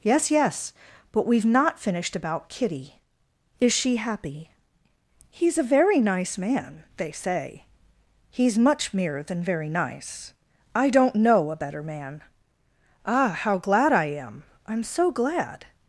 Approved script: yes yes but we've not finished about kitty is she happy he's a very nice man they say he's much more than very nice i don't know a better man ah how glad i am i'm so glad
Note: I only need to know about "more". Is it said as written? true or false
false